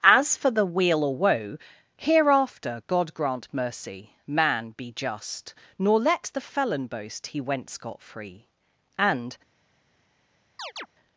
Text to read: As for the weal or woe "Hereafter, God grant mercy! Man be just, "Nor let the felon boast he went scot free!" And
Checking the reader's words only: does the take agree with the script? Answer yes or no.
yes